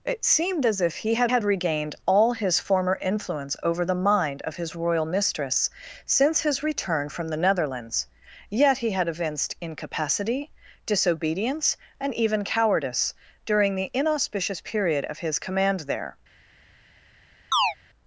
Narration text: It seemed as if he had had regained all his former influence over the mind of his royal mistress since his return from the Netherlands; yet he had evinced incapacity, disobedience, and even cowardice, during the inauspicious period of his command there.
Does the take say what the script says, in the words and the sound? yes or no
no